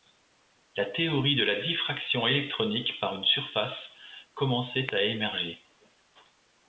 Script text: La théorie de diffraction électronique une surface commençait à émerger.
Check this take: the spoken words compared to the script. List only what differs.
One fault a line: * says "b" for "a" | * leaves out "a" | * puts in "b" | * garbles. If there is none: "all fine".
* puts in "la"
* puts in "par"